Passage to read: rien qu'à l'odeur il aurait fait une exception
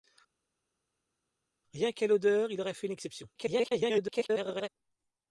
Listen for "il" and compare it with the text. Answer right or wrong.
right